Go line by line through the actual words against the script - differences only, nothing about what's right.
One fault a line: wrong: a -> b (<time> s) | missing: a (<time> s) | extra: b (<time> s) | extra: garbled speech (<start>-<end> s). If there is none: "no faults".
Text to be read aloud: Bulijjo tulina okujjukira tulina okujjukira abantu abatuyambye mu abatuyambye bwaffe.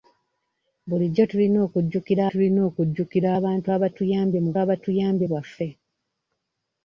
no faults